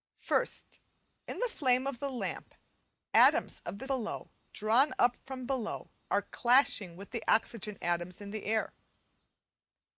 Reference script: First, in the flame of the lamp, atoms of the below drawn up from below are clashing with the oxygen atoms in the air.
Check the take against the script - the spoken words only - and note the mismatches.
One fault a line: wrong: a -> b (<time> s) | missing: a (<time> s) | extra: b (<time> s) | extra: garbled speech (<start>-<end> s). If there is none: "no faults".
no faults